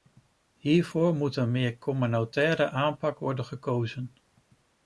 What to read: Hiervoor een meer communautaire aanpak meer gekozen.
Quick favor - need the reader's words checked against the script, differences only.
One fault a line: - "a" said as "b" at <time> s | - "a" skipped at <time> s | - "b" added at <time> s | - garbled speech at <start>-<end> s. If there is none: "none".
- "moet" added at 1.1 s
- "meer" said as "worden" at 3.2 s